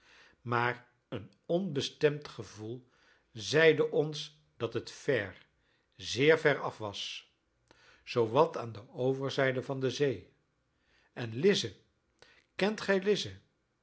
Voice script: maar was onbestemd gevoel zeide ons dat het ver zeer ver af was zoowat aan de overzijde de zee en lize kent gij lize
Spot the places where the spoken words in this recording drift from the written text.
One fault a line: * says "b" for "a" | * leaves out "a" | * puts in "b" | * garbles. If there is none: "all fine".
* says "een" for "was"
* puts in "van"